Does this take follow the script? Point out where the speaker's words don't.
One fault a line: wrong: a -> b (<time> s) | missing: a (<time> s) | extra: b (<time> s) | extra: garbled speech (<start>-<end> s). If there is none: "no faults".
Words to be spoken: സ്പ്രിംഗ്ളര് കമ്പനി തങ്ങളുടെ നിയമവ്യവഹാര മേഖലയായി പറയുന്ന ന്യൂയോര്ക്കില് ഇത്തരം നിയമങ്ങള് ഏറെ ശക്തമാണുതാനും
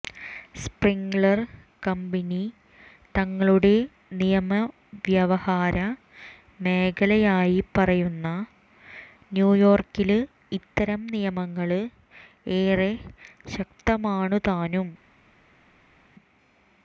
no faults